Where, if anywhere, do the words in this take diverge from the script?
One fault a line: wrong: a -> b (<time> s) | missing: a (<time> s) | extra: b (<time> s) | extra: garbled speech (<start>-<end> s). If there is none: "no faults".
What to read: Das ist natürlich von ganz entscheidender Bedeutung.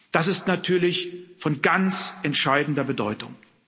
no faults